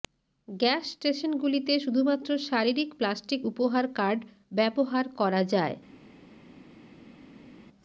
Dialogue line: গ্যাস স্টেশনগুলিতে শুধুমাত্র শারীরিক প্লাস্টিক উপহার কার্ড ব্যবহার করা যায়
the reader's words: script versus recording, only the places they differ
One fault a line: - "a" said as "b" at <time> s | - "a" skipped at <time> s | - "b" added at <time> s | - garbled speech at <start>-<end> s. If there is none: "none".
none